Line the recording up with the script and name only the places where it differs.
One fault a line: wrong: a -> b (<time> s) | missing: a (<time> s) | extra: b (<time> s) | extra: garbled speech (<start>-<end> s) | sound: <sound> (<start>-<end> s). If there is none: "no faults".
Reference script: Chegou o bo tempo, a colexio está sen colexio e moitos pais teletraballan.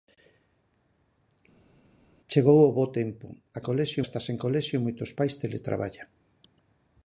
no faults